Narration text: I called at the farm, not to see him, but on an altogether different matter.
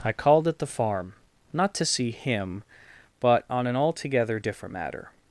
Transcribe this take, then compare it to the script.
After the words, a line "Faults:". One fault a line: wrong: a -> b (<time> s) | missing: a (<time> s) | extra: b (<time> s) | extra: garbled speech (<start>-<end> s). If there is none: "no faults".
I called at the farm, not to see him, but on an altogether different matter.
Faults:
no faults